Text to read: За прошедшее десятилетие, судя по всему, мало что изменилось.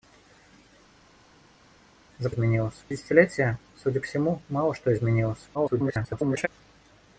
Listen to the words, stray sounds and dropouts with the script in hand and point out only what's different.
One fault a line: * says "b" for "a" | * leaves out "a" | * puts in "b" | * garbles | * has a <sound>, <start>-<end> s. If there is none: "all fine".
* says "изменилось" for "прошедшее"
* leaves out "по"
* garbles